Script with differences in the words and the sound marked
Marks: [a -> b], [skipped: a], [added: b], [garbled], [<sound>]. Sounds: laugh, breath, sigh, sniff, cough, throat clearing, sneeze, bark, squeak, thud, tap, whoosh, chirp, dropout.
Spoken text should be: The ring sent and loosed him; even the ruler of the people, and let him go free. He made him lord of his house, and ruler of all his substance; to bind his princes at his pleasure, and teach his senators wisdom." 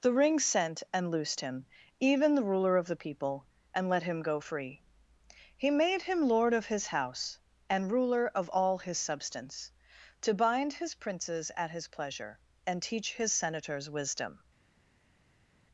The ring sent and loosed him; even the ruler of the people, and let him go free. He made him lord of his house, and ruler of all his substance; to bind his princes at his pleasure, and teach his senators wisdom."